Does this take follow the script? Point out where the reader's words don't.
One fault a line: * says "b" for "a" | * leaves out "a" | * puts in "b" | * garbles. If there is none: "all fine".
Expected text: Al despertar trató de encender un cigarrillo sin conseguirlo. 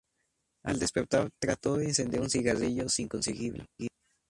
all fine